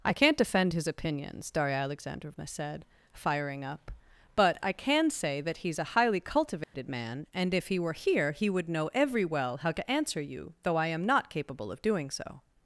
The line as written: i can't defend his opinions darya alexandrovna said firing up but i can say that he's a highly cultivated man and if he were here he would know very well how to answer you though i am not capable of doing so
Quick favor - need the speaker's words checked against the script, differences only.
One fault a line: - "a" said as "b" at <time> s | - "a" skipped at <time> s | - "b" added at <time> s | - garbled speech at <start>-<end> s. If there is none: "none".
- "very" said as "every" at 8.9 s